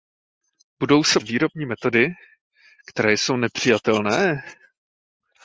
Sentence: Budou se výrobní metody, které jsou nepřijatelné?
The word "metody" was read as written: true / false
true